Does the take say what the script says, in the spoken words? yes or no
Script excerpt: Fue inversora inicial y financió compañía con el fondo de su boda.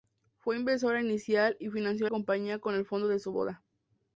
yes